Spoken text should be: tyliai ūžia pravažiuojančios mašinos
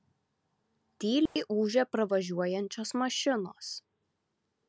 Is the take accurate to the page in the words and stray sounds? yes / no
no